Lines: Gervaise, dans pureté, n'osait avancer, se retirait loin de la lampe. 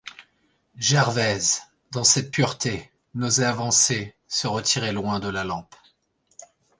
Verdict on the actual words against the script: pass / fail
fail